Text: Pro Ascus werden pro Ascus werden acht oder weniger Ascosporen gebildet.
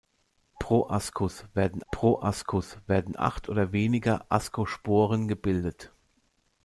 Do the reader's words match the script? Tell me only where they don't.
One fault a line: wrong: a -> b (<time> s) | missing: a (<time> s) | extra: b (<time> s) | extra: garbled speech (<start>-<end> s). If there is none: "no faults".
no faults